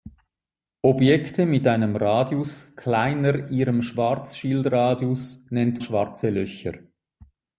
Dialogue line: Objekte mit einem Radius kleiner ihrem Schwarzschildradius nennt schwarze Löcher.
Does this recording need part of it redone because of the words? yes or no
no